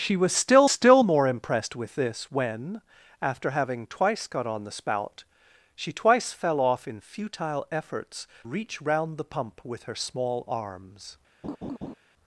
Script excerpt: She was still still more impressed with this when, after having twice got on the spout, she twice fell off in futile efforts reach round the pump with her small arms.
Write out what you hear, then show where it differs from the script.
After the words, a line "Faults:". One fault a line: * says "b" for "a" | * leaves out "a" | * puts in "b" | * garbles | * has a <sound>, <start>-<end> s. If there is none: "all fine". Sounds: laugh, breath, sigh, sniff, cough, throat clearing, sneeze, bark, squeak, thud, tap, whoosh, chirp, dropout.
She was still still more impressed with this when, after having twice got on the spout, she twice fell off in futile efforts reach round the pump with her small arms.
Faults:
* has a laugh, 11.4-11.9 s